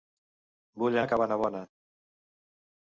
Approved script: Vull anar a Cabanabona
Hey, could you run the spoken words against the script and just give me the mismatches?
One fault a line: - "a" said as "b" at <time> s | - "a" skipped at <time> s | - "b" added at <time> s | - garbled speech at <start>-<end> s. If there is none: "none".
- "anar" skipped at 1.0 s